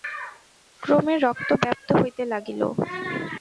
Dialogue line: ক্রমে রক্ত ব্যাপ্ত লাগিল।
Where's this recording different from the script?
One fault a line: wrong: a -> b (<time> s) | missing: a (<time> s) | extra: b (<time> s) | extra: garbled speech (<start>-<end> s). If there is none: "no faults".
extra: হইতে (2.0 s)